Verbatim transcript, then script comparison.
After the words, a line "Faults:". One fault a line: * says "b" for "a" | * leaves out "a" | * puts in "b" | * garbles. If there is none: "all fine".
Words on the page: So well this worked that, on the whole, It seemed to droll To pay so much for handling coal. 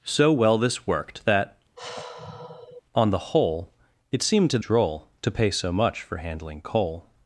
So well this worked that, on the whole, It seemed to droll To pay so much for handling coal.
Faults:
all fine